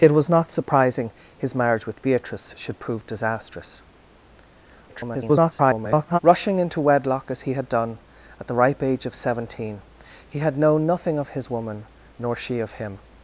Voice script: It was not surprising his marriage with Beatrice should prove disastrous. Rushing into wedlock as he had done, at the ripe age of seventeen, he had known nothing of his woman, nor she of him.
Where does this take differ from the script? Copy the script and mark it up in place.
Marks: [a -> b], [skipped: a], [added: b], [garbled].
It was not surprising his marriage with Beatrice should prove disastrous. [garbled] Rushing into wedlock as he had done, at the ripe age of seventeen, he had known nothing of his woman, nor she of him.